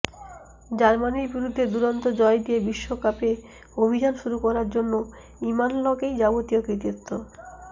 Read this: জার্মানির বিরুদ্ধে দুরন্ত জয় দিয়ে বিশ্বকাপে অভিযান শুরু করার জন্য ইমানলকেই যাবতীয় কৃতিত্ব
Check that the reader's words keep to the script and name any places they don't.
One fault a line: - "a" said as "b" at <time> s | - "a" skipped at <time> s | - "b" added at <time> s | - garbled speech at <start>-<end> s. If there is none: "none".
none